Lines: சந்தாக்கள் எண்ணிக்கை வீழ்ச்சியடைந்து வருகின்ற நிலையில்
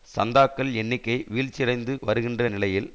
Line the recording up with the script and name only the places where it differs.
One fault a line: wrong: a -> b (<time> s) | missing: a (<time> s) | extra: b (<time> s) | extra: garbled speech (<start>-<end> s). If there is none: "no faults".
no faults